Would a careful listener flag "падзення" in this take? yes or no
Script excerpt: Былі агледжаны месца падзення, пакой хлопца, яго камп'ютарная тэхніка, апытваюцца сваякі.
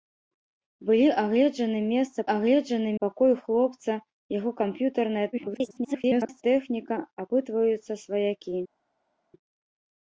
yes